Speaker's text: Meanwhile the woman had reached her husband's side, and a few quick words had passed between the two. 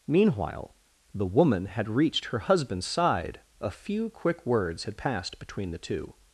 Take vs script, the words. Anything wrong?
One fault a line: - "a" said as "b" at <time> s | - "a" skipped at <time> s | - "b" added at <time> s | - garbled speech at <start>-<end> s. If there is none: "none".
- "and" skipped at 3.4 s